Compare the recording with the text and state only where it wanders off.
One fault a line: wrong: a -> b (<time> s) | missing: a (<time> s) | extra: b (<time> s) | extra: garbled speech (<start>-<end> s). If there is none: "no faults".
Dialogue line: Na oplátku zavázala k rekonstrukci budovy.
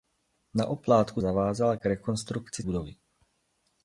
no faults